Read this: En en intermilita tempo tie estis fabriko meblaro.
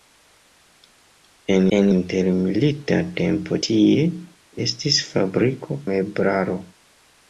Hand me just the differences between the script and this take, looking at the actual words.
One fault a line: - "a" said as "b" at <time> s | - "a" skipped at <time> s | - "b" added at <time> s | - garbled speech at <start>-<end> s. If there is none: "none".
none